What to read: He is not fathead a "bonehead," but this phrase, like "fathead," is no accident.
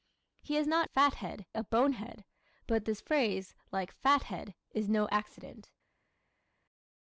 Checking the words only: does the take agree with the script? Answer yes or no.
yes